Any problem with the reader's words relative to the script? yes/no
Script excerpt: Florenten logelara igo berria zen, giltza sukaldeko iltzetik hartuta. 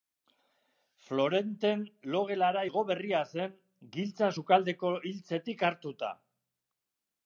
no